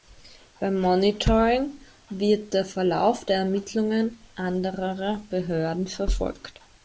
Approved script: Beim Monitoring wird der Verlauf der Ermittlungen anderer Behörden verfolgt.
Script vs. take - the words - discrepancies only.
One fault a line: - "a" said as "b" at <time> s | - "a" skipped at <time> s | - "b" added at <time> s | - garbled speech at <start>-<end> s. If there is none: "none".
none